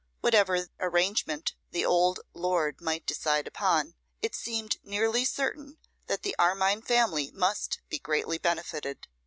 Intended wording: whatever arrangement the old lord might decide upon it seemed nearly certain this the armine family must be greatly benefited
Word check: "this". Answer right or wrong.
wrong